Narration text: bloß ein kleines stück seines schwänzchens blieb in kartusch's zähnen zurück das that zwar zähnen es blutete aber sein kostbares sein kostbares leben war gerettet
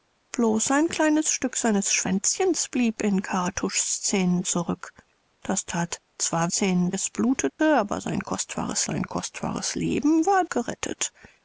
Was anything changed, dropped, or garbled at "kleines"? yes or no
no